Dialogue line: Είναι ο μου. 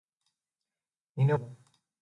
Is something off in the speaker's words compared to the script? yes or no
no